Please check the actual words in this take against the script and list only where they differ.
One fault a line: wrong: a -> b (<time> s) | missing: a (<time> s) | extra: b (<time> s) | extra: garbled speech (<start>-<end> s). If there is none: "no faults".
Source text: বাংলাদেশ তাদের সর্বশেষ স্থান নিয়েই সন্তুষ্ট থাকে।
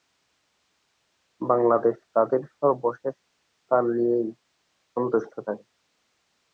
no faults